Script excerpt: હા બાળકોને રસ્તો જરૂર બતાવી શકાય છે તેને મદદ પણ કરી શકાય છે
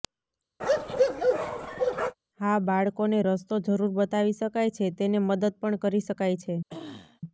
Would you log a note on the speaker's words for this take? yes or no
no